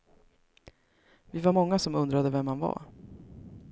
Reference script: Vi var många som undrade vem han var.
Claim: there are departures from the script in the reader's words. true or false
false